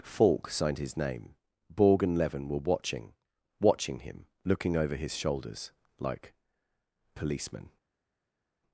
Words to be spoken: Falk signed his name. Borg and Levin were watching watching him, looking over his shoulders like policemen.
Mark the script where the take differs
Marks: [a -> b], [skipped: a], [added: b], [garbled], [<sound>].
Falk signed his name. Borg and Levin were watching watching him, looking over his shoulders like policemen.